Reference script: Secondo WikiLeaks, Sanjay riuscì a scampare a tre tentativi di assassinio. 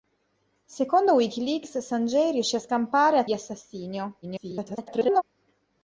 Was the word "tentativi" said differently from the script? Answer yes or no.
yes